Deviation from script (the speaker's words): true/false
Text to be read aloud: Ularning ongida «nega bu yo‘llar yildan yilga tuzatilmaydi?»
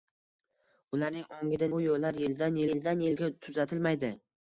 true